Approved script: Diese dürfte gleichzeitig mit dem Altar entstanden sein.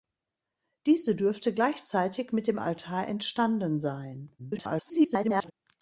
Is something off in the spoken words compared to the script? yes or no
yes